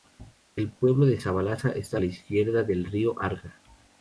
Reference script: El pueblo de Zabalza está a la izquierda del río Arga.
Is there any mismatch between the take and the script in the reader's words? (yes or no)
no